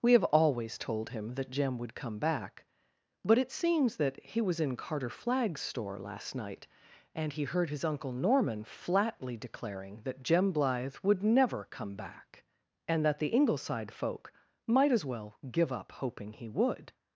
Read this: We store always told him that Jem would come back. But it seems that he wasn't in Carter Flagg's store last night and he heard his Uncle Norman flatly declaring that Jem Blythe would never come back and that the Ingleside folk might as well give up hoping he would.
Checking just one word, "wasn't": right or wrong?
wrong